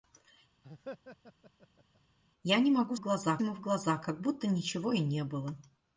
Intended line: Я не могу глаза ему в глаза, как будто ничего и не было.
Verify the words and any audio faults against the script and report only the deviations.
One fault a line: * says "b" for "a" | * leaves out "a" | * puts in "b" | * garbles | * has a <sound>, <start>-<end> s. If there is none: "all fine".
* has a laugh, 0.6-2.0 s